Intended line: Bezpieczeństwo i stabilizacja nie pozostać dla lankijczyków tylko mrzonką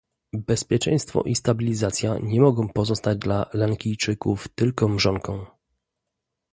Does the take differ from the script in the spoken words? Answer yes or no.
yes